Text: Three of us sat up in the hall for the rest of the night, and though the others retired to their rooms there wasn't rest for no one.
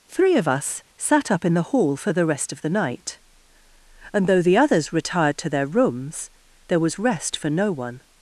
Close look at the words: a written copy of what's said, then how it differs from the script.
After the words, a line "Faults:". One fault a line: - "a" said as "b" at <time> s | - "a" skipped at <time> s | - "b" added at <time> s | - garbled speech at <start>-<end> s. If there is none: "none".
Three of us sat up in the hall for the rest of the night, and though the others retired to their rooms there was rest for no one.
Faults:
- "wasn't" said as "was" at 6.8 s